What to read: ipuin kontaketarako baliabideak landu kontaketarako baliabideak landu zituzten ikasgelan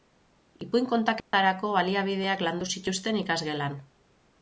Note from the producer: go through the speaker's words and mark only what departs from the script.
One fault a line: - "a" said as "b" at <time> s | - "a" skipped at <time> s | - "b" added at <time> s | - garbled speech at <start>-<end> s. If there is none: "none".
- "kontaketarako baliabideak landu" skipped at 2.7 s